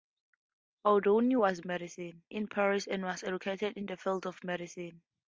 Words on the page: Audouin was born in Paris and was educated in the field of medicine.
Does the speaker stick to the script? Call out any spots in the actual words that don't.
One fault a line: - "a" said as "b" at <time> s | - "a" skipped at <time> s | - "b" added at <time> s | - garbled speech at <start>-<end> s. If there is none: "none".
- "born" said as "medicine" at 1.7 s